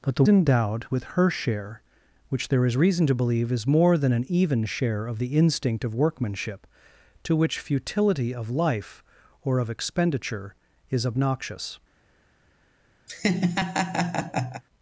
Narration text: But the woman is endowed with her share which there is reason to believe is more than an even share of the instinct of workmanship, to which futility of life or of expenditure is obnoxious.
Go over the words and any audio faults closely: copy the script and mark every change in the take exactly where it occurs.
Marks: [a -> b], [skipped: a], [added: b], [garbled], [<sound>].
But the [skipped: woman is] endowed with her share which there is reason to believe is more than an even share of the instinct of workmanship, to which futility of life or of expenditure is obnoxious. [laugh]